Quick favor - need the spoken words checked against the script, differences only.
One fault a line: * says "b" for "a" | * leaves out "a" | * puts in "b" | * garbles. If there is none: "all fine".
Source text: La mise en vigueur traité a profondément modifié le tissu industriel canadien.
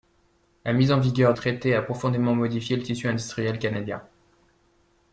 all fine